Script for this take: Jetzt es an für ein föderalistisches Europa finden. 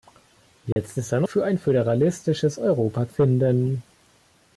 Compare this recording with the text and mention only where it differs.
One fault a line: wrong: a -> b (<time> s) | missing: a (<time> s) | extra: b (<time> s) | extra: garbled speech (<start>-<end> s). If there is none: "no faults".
no faults